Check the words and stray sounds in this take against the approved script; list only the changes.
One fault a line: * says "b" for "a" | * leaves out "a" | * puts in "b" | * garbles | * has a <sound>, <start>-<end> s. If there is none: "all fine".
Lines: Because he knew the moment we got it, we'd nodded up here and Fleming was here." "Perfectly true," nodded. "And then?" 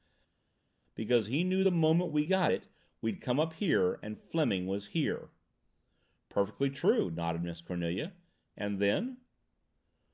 * says "come" for "nodded"
* puts in "Miss Cornelia"